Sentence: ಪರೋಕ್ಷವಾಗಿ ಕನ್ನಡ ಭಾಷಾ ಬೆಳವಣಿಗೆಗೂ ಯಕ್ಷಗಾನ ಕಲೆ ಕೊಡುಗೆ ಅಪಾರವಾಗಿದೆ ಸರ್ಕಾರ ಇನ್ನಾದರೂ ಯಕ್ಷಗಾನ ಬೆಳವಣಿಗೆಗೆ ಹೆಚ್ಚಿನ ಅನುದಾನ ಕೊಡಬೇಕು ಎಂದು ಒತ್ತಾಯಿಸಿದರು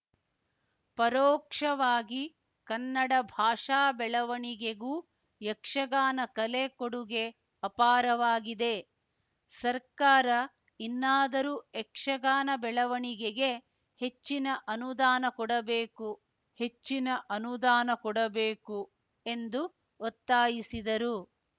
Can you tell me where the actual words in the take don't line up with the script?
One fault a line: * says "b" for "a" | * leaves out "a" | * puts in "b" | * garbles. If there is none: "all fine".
* puts in "ಹೆಚ್ಚಿನ ಅನುದಾನ ಕೊಡಬೇಕು"